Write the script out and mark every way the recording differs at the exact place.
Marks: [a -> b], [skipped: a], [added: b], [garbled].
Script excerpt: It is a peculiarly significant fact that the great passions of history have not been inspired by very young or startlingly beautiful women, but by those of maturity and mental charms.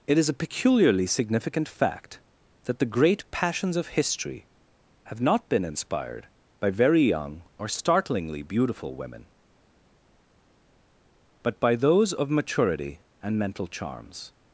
It is a peculiarly significant fact that the great passions of history have not been inspired by very young or startlingly beautiful women, but by those of maturity and mental charms.